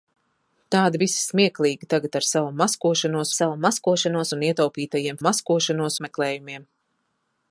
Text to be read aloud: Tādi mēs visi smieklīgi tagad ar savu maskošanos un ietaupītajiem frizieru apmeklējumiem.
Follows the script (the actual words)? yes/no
no